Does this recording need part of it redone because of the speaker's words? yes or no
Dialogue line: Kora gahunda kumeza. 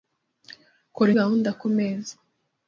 no